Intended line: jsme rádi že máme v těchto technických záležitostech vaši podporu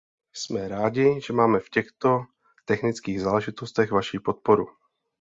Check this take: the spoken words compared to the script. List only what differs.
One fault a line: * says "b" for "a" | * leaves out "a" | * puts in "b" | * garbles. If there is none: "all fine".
all fine